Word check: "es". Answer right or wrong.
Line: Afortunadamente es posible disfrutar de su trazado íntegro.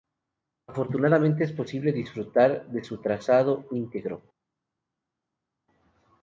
right